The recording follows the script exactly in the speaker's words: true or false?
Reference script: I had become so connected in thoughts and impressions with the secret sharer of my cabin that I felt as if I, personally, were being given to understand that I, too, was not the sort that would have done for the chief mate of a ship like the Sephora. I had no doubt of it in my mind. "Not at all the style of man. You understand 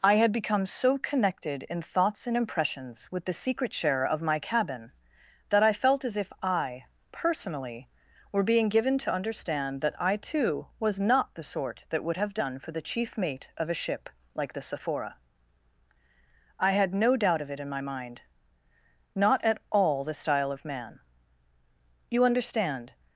true